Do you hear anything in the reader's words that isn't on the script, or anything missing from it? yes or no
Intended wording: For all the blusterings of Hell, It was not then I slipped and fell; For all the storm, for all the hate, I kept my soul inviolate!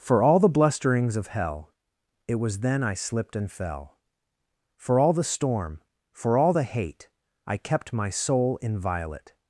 yes